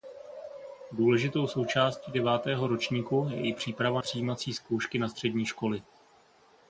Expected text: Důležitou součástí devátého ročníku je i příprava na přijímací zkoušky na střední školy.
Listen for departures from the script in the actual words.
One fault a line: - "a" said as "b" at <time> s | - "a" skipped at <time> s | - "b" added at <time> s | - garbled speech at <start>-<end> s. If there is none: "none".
- "na" skipped at 4.0 s